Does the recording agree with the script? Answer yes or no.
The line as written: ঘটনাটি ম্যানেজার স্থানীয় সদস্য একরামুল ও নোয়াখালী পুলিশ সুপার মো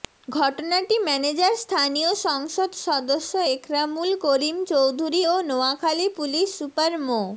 no